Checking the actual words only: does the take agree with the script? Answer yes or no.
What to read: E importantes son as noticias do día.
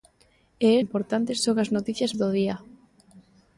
yes